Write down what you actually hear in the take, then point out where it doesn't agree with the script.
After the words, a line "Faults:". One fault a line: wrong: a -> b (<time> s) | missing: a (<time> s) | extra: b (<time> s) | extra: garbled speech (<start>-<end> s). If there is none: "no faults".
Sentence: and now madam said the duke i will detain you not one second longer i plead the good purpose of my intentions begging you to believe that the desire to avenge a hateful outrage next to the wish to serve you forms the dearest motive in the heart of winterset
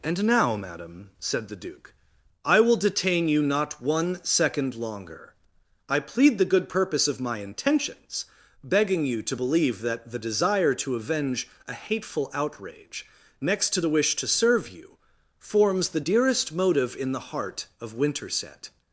and now madam said the duke i will detain you not one second longer i plead the good purpose of my intentions begging you to believe that the desire to avenge a hateful outrage next to the wish to serve you forms the dearest motive in the heart of winterset
Faults:
no faults